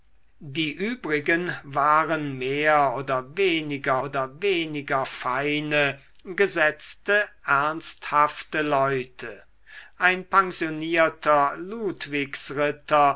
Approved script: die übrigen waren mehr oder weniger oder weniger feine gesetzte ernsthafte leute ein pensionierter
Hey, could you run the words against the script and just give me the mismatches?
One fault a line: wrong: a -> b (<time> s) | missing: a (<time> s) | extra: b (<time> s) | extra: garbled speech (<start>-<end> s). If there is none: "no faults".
no faults